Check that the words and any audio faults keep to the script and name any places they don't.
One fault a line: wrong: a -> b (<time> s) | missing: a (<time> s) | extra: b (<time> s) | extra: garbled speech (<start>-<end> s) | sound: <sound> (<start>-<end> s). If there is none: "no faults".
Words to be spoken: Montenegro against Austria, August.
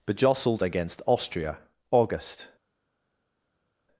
wrong: Montenegro -> Bejostled (0.1 s)